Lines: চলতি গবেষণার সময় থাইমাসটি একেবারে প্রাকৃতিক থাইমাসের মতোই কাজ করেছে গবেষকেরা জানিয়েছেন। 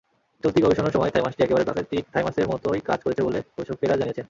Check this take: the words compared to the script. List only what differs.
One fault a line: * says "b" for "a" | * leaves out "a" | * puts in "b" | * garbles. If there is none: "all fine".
* puts in "বলে"